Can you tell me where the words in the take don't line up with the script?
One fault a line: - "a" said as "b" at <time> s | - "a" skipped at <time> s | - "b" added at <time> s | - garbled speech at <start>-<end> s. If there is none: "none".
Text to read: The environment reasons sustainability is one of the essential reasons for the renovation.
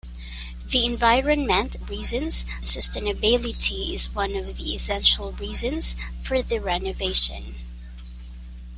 none